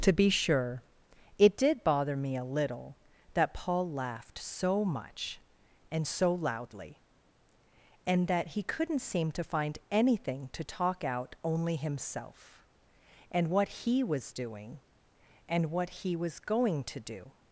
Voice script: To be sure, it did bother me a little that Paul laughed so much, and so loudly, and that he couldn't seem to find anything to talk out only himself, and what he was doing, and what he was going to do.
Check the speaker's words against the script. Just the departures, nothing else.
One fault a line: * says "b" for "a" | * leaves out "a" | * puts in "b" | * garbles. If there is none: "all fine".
all fine